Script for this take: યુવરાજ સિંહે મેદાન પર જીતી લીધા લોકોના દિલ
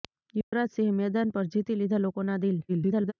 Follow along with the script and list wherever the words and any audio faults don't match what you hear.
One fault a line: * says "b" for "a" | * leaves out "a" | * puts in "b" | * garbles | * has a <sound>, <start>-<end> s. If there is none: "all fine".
* has a dropout, 0.4-0.5 s
* garbles